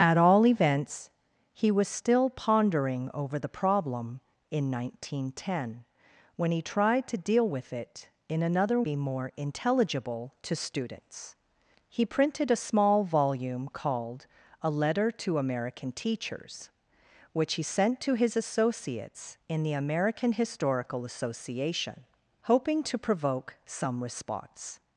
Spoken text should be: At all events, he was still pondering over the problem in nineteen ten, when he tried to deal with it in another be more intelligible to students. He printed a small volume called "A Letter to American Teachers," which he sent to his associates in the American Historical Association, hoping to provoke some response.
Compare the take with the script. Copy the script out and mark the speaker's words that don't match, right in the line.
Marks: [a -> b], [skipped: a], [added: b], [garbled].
At all events, he was still pondering over the problem in nineteen ten, when he tried to deal with it in another be more intelligible to students. He printed a small volume called "A Letter to American Teachers," which he sent to his associates in the American Historical Association, hoping to provoke some response.